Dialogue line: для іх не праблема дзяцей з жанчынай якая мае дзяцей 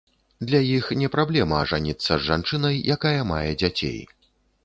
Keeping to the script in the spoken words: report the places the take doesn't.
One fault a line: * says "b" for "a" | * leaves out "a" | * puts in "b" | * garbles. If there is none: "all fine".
* says "ажаніцца" for "дзяцей"